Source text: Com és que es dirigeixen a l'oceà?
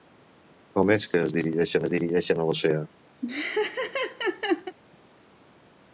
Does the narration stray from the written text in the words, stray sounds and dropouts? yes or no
yes